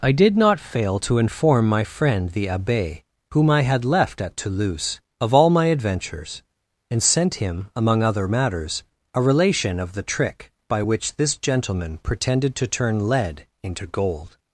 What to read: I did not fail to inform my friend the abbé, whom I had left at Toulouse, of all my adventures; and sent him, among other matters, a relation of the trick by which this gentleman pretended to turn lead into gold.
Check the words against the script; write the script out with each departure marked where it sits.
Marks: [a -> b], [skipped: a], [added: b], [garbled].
I did not fail to inform my friend the abbé, whom I had left at Toulouse, of all my adventures; and sent him, among other matters, a relation of the trick by which this gentleman pretended to turn lead into gold.